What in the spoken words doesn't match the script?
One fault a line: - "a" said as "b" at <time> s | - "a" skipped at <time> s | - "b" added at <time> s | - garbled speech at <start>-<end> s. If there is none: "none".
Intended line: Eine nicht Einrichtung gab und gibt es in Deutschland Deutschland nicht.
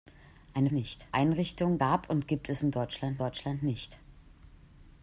none